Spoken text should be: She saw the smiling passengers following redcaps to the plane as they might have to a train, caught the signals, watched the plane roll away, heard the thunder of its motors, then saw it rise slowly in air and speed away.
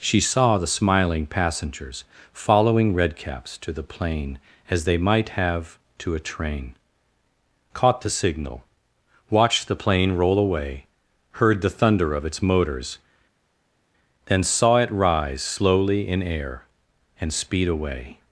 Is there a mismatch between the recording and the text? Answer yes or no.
yes